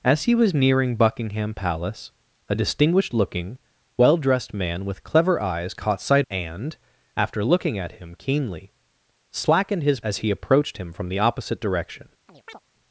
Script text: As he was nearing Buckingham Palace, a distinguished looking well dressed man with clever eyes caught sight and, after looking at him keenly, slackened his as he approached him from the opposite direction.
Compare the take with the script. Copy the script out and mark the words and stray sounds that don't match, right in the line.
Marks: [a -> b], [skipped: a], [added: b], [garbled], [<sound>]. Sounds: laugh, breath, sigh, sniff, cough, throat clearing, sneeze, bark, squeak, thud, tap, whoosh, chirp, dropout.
As he was nearing Buckingham Palace, a distinguished looking well dressed man with clever eyes caught sight and, after looking at him keenly, slackened his as he approached him from the opposite direction. [chirp]